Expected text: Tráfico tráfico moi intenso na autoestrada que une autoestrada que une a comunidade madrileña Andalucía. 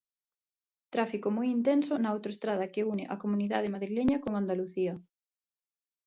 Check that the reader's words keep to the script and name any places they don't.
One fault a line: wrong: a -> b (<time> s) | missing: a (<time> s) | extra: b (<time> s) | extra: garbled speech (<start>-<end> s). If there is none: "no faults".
missing: tráfico (1.3 s)
missing: autoestrada que une (3.0 s)
extra: con (4.2 s)